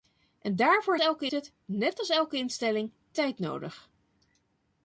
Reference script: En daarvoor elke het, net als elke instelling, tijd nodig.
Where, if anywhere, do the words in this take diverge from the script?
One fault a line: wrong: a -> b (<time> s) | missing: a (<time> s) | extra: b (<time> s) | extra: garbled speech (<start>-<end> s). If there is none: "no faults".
no faults